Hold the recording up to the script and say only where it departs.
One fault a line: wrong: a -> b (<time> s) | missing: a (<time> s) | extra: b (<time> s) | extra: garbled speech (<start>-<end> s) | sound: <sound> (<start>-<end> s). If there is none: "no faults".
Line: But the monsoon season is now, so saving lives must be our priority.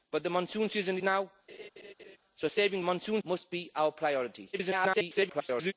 missing: is (1.0 s)
sound: laugh (1.5-2.2 s)
wrong: lives -> monsoon (2.8 s)
extra: garbled speech (4.5-5.7 s)